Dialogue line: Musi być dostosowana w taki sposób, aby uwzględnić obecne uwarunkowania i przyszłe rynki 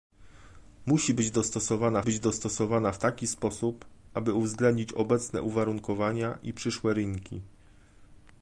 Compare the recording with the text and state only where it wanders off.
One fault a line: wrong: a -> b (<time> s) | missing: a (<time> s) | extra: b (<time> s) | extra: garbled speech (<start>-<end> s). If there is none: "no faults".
extra: być dostosowana (2.0 s)